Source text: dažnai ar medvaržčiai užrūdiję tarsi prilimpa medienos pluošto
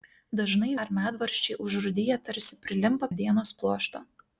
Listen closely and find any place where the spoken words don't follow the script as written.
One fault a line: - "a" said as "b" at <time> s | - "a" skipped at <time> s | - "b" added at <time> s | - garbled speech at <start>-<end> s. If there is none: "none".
none